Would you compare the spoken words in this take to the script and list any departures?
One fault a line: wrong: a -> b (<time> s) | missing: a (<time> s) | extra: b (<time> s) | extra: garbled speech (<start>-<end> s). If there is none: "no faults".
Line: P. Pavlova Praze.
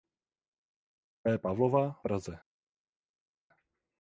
no faults